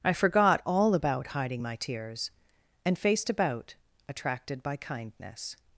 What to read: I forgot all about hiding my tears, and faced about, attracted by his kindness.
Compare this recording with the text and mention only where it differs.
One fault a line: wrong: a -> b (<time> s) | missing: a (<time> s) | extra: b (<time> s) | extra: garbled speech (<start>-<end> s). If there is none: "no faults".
missing: his (4.8 s)